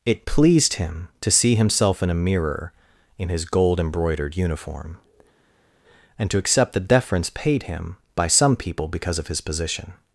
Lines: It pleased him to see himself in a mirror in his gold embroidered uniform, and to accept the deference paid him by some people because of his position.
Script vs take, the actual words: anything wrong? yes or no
no